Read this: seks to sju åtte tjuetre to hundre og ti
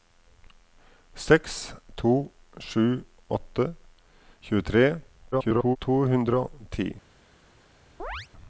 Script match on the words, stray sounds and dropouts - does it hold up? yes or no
no